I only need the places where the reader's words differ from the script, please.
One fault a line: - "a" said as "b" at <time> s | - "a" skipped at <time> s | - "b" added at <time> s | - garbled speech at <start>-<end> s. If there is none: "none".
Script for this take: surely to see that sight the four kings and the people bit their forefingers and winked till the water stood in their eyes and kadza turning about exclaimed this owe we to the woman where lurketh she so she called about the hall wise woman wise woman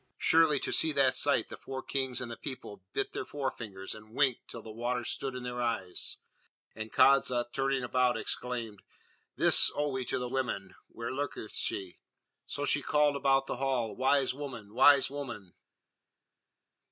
none